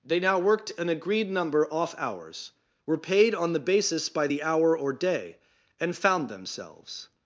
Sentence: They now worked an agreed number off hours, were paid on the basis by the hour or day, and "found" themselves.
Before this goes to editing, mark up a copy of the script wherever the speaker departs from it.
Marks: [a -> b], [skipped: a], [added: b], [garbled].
They now worked an agreed number off hours, were paid on the basis by the hour or day, and "found" themselves.